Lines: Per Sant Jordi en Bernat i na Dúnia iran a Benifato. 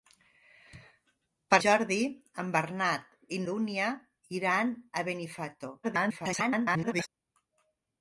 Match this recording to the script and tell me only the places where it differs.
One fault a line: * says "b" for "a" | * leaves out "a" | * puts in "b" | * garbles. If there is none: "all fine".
* leaves out "Sant"
* leaves out "na"
* garbles